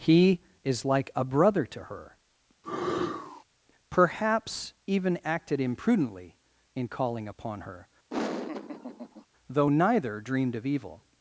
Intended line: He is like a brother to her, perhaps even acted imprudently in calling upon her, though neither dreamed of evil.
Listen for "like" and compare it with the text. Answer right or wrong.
right